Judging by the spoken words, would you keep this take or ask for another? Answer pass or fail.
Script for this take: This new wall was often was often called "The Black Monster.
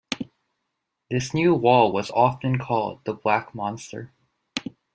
fail